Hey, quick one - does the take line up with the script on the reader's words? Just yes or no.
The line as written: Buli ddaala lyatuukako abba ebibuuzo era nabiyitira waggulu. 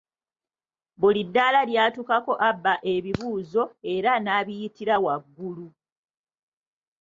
yes